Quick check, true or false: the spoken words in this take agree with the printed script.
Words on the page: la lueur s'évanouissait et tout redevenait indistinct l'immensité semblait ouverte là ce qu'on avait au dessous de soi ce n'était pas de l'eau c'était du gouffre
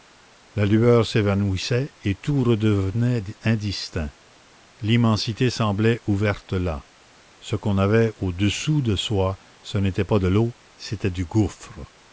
true